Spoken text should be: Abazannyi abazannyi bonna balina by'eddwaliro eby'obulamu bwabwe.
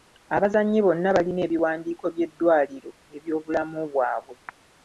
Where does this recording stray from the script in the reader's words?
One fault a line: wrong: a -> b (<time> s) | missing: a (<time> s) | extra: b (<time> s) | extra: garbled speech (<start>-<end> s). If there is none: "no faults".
missing: abazannyi (0.8 s)
extra: ebiwandiiko (1.5 s)